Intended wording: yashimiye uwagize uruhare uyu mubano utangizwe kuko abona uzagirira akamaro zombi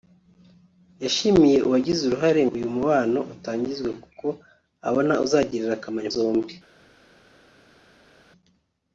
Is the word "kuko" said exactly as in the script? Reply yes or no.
yes